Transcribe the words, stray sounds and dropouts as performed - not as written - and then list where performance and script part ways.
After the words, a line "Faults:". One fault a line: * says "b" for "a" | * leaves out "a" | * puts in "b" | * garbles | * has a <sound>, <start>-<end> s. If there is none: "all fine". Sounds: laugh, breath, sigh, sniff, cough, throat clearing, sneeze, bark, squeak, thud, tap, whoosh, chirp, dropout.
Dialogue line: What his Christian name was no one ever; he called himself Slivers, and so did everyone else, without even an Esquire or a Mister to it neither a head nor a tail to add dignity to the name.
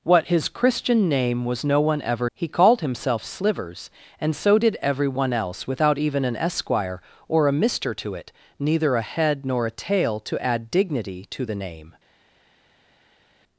What his Christian name was no one ever; he called himself Slivers, and so did everyone else, without even an Esquire or a Mister to it neither a head nor a tail to add dignity to the name.
Faults:
all fine